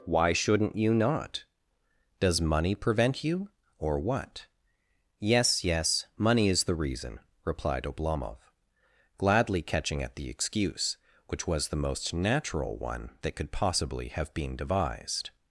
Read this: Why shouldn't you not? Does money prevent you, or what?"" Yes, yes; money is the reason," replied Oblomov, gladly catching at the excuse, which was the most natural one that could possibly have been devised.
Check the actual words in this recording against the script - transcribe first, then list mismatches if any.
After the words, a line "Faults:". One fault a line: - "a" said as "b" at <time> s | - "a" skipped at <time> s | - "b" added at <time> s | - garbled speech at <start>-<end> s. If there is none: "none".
Why shouldn't you not? Does money prevent you, or what?"" Yes, yes; money is the reason," replied Oblomov, gladly catching at the excuse, which was the most natural one that could possibly have been devised.
Faults:
none